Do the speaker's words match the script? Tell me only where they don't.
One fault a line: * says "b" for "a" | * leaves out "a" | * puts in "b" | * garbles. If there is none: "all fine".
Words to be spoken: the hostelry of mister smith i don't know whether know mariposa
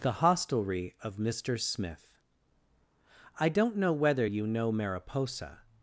* puts in "you"